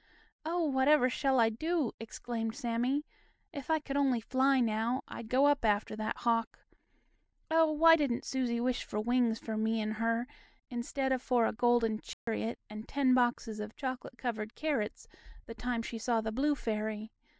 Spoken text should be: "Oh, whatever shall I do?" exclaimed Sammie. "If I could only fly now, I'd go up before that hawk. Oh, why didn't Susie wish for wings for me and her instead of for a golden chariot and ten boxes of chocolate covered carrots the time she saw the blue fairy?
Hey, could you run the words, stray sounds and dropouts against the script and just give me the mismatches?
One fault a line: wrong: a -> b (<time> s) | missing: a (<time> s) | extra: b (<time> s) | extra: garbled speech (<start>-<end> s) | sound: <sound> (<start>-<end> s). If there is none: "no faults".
wrong: before -> after (5.6 s)
sound: dropout (12.1-12.3 s)